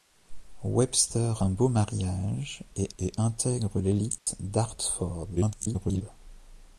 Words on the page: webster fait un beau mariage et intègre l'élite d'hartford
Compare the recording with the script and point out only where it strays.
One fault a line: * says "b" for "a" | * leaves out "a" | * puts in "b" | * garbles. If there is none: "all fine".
* leaves out "fait"
* puts in "et"
* garbles